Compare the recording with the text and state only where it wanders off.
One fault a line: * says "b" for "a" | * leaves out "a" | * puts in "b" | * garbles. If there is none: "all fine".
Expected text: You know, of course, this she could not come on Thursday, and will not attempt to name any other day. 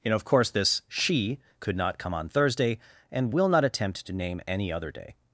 all fine